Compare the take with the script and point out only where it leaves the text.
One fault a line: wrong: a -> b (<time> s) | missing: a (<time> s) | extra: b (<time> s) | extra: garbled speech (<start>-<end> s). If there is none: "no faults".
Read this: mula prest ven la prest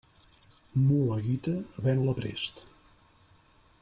wrong: prest -> guita (1.2 s)